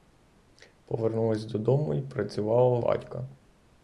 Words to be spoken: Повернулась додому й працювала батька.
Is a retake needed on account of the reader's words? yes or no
no